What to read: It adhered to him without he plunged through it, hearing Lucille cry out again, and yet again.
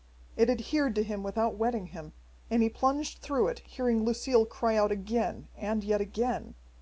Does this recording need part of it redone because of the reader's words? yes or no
yes